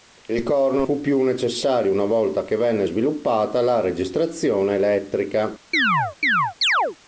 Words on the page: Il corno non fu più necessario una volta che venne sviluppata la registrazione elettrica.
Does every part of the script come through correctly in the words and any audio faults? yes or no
no